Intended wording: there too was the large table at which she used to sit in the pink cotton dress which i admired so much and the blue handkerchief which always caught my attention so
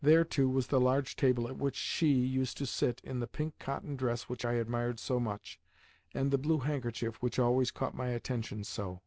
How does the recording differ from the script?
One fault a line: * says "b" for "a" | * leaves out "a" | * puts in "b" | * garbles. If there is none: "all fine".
all fine